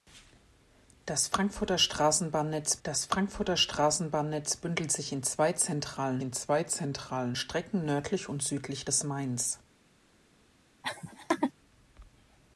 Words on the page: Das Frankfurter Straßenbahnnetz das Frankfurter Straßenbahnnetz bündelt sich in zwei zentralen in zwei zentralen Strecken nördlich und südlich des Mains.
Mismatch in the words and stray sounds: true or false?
true